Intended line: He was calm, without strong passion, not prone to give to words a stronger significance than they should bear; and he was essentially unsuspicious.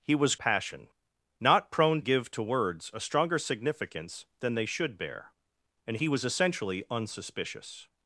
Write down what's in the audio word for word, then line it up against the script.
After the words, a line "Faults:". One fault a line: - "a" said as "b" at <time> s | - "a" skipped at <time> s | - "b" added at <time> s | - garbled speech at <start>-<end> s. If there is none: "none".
He was passion, not prone give to words a stronger significance than they should bear; and he was essentially unsuspicious.
Faults:
- "calm without strong" skipped at 0.3 s
- "to" skipped at 2.0 s